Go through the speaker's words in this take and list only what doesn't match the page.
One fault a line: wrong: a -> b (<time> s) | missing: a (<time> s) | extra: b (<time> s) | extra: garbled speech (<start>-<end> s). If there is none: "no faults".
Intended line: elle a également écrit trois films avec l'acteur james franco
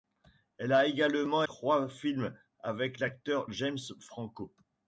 missing: écrit (1.4 s)